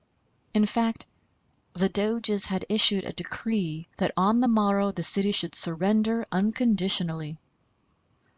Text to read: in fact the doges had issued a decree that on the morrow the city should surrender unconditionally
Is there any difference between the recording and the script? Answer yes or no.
no